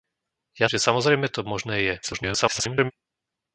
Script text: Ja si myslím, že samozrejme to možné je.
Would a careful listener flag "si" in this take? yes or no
yes